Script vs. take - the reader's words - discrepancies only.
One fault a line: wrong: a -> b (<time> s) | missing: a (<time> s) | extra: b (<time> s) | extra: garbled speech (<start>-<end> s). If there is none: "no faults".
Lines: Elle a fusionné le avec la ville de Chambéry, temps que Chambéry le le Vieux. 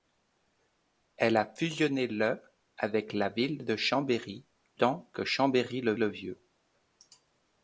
no faults